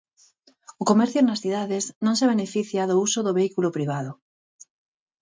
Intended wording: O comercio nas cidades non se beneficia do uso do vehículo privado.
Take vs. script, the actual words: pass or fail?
pass